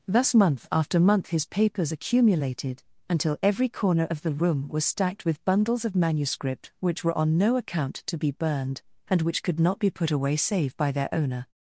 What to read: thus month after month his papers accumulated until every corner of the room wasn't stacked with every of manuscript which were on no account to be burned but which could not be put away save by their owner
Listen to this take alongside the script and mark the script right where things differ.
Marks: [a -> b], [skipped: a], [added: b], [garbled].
thus month after month his papers accumulated until every corner of the room [wasn't -> was] stacked with [every -> bundles] of manuscript which were on no account to be burned [but -> and] which could not be put away save by their owner